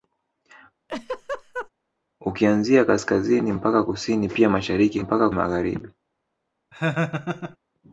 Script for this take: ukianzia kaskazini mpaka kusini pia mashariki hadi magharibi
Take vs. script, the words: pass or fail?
fail